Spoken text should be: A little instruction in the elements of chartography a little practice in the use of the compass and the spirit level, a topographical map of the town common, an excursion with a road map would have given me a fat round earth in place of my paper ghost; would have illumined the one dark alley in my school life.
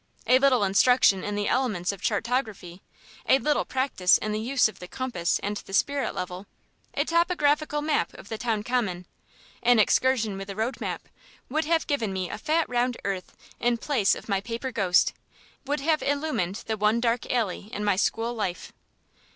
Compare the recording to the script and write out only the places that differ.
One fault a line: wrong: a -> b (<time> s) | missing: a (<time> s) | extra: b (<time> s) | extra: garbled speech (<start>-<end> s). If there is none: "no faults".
no faults